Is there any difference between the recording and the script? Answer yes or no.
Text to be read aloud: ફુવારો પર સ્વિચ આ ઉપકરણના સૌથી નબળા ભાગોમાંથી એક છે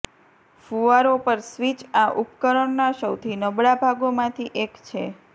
no